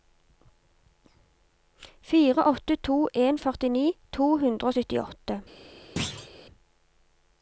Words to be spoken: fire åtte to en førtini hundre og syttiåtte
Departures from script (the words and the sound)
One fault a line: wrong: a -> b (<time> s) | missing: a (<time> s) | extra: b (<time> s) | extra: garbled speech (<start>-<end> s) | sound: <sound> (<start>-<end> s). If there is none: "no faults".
extra: to (4.2 s)
sound: thud (6.0-6.3 s)